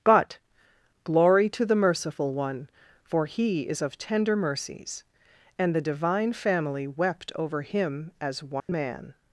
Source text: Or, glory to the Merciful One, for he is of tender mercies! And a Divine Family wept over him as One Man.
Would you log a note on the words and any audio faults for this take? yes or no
yes